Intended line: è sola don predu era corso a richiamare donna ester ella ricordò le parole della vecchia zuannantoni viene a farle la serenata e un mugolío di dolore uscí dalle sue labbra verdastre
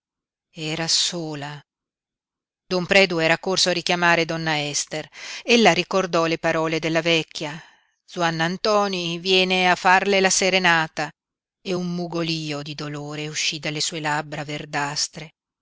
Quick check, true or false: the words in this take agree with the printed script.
false